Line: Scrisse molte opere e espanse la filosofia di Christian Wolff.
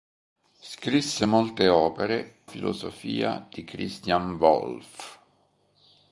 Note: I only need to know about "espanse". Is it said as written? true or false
false